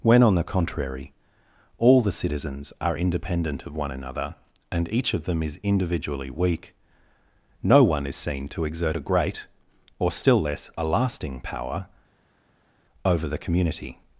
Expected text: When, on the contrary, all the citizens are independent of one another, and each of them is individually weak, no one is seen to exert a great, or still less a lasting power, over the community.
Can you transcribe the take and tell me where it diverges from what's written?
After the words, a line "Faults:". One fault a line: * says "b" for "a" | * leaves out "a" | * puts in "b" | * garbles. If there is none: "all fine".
When, on the contrary, all the citizens are independent of one another, and each of them is individually weak, no one is seen to exert a great, or still less a lasting power, over the community.
Faults:
all fine